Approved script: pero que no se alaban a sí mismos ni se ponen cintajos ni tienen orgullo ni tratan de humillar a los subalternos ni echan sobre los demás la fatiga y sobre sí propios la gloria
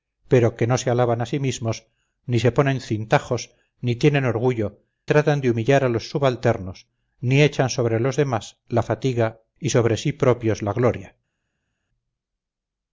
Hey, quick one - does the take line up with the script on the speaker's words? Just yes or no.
no